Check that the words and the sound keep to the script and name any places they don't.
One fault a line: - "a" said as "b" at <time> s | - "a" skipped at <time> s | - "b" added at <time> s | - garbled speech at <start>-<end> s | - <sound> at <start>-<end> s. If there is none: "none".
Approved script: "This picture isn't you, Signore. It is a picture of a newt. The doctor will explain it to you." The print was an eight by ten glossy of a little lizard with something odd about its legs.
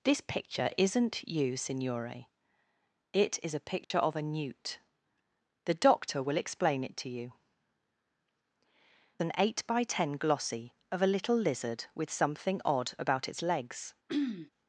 - dropout at 3.8-3.9 s
- "The print was" skipped at 7.3 s
- throat clearing at 14.1-14.5 s